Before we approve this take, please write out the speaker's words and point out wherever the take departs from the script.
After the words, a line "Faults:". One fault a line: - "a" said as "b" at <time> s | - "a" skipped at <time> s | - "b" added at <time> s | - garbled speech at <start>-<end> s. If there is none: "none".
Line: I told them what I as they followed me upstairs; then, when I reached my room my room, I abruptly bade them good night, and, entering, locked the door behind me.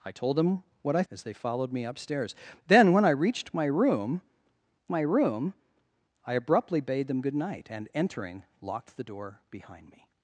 I told them what I as they followed me upstairs; then, when I reached my room my room, I abruptly bade them good night, and, entering, locked the door behind me.
Faults:
none